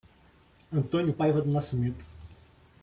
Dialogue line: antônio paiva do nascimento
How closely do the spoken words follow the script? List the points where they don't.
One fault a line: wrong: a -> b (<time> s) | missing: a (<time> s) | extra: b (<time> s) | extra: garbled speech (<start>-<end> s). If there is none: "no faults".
no faults